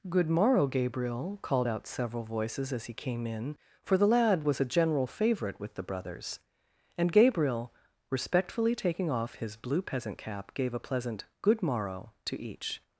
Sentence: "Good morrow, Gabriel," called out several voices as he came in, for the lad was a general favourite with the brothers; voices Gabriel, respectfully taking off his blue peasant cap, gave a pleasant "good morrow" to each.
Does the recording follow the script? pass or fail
fail